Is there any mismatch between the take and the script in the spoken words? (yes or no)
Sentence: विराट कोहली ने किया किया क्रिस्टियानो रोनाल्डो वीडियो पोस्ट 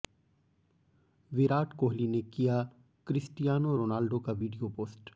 yes